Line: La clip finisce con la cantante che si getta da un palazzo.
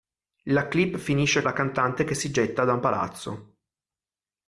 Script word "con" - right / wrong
wrong